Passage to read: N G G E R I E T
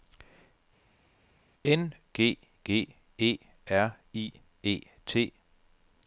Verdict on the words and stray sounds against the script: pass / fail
pass